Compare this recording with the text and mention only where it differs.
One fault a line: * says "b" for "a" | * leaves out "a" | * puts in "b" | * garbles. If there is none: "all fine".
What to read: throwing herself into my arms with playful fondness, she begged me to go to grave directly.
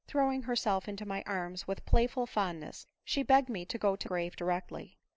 all fine